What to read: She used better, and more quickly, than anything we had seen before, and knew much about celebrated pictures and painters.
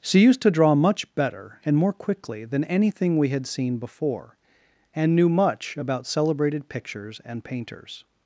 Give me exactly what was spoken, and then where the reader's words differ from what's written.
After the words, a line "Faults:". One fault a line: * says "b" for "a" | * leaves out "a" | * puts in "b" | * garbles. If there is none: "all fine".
She used to draw much better, and more quickly, than anything we had seen before, and knew much about celebrated pictures and painters.
Faults:
* puts in "to draw much"